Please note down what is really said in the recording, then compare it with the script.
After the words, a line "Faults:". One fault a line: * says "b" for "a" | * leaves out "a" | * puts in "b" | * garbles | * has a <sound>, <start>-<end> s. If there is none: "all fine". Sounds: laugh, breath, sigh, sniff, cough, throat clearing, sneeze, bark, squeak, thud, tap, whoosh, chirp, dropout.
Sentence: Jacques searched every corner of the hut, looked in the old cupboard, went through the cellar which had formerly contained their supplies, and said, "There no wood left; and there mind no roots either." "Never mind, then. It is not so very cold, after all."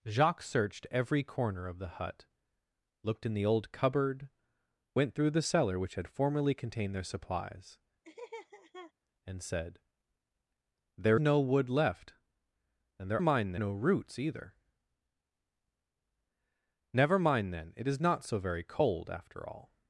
Jacques searched every corner of the hut, looked in the old cupboard, went through the cellar which had formerly contained their supplies, and said, "There no wood left; and there mind no roots either." "Never mind, then. It is not so very cold, after all."
Faults:
* has a laugh, 8.0-8.9 s